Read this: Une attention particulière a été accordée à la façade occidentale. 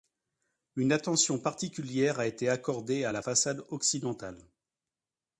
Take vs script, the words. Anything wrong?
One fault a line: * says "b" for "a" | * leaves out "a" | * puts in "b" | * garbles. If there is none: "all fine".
all fine